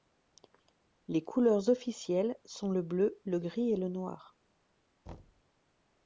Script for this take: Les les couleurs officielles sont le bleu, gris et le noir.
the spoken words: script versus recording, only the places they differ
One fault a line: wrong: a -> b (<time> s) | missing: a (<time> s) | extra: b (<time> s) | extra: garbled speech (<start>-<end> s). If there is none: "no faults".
missing: les (1.2 s)
extra: le (3.2 s)